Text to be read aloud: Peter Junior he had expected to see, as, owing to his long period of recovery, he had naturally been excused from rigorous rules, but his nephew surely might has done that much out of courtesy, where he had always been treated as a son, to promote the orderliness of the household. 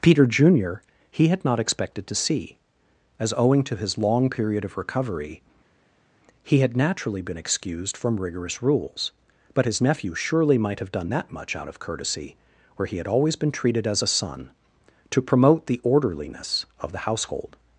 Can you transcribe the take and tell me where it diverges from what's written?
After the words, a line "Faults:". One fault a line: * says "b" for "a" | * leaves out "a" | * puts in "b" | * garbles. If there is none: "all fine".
Peter Junior he had not expected to see, as, owing to his long period of recovery, he had naturally been excused from rigorous rules, but his nephew surely might have done that much out of courtesy, where he had always been treated as a son, to promote the orderliness of the household.
Faults:
* puts in "not"
* says "have" for "has"